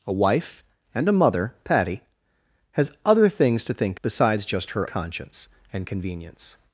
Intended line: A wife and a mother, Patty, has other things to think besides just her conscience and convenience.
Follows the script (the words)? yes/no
yes